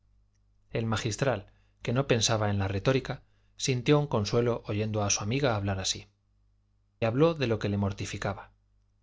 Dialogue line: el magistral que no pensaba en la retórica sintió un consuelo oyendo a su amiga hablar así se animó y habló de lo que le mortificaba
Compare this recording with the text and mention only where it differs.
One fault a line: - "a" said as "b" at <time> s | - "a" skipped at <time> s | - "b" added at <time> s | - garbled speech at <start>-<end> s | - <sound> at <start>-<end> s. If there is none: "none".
- "se animó y" skipped at 6.1 s